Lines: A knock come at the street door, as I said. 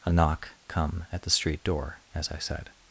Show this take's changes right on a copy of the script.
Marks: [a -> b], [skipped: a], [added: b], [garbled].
A knock come at the street door, as I said.